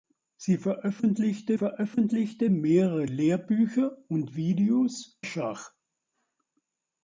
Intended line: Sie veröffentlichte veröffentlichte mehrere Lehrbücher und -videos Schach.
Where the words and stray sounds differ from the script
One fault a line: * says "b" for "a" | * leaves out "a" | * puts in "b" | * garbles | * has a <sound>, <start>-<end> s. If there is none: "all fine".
all fine